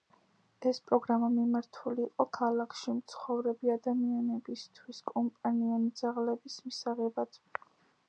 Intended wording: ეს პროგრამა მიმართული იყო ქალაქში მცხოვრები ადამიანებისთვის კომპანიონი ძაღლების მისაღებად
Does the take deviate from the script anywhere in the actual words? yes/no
no